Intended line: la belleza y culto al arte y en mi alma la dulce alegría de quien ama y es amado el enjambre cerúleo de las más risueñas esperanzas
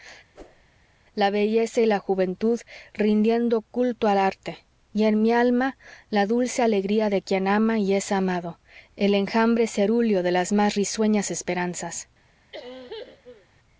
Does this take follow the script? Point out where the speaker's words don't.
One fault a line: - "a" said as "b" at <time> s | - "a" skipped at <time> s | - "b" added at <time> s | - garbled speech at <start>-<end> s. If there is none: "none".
- "la juventud rindiendo" added at 1.9 s